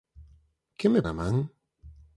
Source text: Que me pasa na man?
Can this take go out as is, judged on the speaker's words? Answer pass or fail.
fail